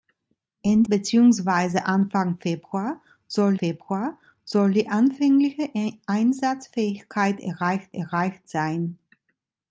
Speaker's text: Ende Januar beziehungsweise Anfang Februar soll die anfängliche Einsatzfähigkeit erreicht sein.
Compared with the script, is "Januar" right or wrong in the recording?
wrong